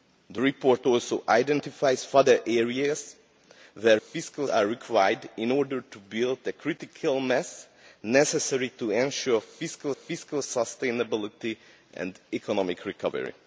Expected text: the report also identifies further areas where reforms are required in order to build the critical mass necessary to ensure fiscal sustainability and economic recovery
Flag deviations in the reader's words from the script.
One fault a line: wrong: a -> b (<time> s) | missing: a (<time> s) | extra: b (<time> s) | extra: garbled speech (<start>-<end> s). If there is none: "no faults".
wrong: reforms -> fiscal (3.9 s)
extra: fiscal (9.9 s)